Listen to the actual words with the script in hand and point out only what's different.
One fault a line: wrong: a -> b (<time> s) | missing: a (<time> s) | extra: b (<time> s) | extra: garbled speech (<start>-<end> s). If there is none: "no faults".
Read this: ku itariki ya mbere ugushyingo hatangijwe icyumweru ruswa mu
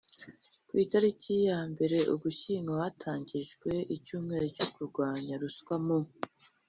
extra: cyo kurwanya (4.5 s)